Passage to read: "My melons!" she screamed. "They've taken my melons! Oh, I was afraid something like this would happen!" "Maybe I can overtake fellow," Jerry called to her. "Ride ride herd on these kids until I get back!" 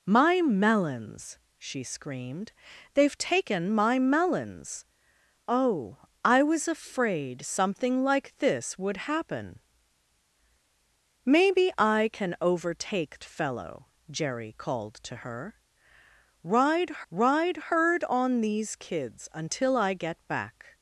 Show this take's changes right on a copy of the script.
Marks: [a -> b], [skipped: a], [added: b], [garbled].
"My melons!" she screamed. "They've taken my melons! Oh, I was afraid something like this would happen!" "Maybe I can overtake fellow," Jerry called to her. "Ride ride herd on these kids until I get back!"